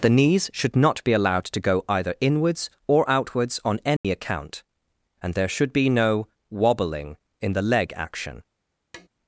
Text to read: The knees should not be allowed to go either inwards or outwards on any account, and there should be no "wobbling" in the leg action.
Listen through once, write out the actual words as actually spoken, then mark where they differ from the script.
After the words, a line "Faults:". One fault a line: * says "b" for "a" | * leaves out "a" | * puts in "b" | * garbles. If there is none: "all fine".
The knees should not be allowed to go either inwards or outwards on any account, and there should be no "wobbling" in the leg action.
Faults:
all fine